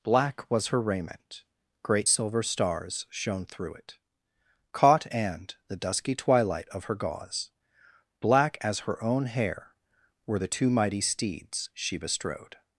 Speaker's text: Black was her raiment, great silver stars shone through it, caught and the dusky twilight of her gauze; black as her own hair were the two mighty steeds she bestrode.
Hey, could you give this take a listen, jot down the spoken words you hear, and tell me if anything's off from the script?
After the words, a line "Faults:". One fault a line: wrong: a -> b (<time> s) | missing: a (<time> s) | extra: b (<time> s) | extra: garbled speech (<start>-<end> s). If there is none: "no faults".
Black was her raiment, great silver stars shone through it, caught and the dusky twilight of her gauze; black as her own hair were the two mighty steeds she bestrode.
Faults:
no faults